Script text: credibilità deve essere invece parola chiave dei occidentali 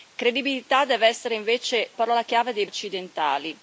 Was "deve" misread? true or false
false